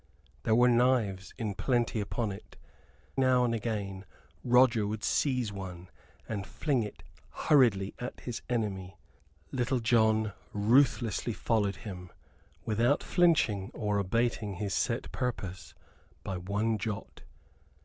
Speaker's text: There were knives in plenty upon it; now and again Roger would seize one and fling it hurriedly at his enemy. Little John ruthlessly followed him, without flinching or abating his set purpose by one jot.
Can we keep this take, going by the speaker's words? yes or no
yes